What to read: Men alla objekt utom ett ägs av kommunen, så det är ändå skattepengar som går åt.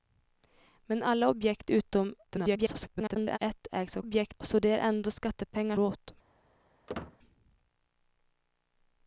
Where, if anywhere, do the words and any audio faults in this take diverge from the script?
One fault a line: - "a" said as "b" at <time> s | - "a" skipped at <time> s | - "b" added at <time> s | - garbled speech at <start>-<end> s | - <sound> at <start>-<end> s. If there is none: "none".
- garbled speech at 2.3-3.4 s
- "kommunen" said as "objekt" at 4.0 s
- "som går" skipped at 5.8 s
- squeak at 6.9-7.2 s